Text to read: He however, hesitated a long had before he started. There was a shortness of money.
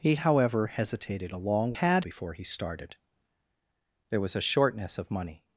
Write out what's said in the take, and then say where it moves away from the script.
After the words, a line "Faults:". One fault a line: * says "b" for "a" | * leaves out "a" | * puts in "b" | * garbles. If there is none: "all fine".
He however, hesitated a long had before he started. There was a shortness of money.
Faults:
all fine